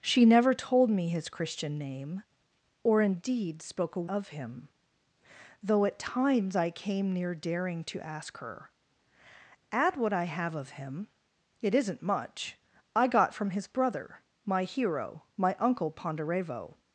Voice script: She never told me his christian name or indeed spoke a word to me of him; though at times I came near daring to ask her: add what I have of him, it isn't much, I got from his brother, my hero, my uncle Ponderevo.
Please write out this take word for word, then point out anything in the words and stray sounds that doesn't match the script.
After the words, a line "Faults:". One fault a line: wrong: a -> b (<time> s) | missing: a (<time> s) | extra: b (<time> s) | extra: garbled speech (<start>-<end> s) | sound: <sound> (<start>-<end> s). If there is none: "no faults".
She never told me his christian name or indeed spoke a of him; though at times I came near daring to ask her: add what I have of him, it isn't much, I got from his brother, my hero, my uncle Ponderevo.
Faults:
missing: word to me (4.1 s)